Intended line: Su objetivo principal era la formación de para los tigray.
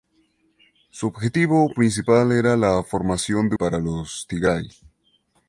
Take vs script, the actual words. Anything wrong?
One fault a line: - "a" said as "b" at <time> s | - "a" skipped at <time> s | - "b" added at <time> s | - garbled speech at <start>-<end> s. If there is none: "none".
none